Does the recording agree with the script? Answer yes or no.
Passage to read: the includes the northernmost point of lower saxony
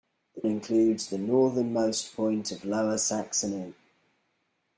yes